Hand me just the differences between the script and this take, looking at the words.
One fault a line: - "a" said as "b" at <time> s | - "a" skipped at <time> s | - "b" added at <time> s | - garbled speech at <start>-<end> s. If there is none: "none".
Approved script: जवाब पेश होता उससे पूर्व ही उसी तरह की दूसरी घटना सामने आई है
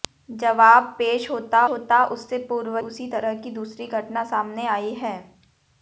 - "होता" added at 1.7 s
- "ही" skipped at 2.8 s